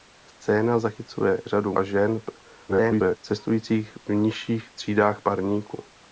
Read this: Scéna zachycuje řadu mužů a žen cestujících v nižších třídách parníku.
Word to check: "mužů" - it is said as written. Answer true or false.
false